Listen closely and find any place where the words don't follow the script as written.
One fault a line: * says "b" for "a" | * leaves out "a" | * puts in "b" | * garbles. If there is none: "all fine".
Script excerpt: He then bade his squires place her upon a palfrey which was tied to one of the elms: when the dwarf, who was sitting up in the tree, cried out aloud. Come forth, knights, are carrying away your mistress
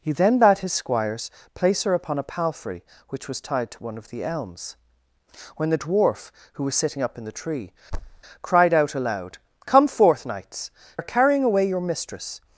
all fine